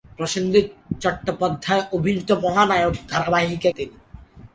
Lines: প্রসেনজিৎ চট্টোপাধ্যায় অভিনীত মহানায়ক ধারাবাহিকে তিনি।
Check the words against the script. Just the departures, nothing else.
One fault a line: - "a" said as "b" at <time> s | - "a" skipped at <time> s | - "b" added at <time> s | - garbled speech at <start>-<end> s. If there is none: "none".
none